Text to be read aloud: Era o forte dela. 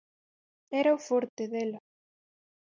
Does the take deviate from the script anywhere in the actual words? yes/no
no